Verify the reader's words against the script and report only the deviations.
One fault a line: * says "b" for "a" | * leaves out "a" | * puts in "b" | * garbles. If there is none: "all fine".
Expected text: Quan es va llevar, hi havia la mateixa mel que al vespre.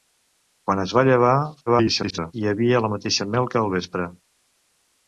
* garbles